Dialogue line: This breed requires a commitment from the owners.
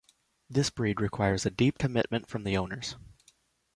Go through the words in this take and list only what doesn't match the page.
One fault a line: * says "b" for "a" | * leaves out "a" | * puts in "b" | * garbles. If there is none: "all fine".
* puts in "deep"